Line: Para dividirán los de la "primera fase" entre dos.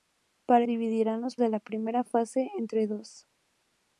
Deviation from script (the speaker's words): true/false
false